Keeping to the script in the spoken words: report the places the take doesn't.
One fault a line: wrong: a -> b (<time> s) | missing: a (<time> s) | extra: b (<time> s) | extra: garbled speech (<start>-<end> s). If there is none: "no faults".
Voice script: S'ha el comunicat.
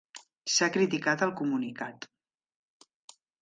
extra: criticat (0.7 s)